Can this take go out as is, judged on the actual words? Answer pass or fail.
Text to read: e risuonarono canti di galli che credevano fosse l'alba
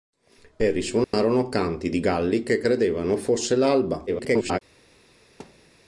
fail